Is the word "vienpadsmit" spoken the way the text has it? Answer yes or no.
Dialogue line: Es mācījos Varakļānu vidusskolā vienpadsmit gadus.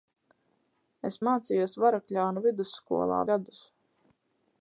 no